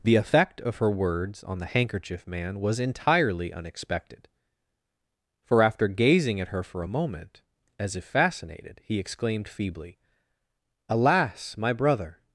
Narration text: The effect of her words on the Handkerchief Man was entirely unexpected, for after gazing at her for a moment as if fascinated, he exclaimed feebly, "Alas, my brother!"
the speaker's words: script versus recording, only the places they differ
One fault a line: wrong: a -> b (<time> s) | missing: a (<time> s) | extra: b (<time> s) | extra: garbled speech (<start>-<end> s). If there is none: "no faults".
no faults